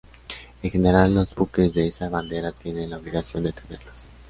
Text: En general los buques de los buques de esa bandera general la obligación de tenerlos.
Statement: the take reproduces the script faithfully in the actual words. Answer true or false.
false